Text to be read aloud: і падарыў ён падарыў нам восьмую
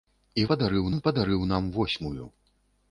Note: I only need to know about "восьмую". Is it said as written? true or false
true